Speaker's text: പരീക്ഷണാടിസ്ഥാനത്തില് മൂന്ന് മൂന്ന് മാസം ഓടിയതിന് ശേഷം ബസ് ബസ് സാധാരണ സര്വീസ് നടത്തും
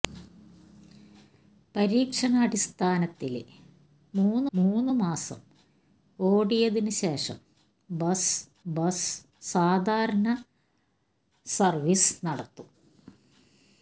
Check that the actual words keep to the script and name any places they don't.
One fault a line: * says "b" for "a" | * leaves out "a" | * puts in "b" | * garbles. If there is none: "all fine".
all fine